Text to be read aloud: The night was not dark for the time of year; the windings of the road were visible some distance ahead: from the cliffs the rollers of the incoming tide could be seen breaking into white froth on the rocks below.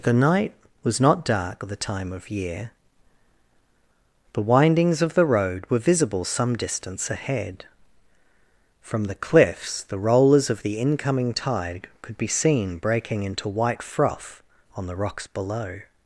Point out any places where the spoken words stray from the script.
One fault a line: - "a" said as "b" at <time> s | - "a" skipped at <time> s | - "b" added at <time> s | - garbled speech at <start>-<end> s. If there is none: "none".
- "for" skipped at 1.6 s